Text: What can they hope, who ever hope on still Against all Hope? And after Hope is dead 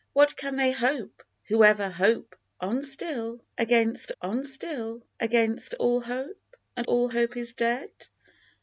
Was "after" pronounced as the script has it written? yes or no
no